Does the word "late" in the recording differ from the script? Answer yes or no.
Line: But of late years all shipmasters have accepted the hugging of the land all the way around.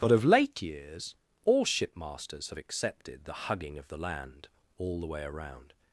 no